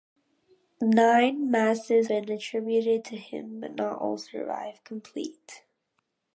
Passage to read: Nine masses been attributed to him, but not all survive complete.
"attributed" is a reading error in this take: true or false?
false